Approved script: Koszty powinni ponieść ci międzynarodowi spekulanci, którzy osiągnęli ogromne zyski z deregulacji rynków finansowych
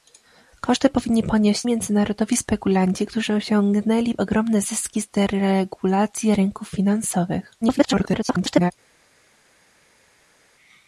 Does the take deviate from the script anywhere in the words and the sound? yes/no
yes